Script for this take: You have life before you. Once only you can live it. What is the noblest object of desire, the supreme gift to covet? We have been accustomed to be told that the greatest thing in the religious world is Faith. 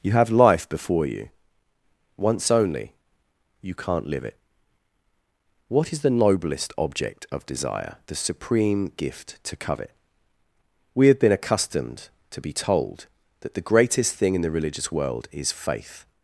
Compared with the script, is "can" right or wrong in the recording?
wrong